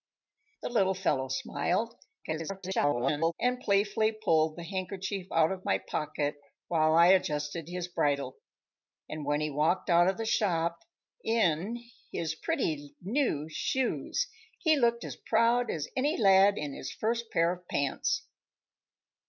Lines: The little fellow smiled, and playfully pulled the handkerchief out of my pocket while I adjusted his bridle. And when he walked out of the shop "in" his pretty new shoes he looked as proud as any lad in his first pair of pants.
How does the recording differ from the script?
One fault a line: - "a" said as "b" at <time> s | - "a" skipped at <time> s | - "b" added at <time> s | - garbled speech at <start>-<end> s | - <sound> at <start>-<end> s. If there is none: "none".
- garbled speech at 2.2-3.3 s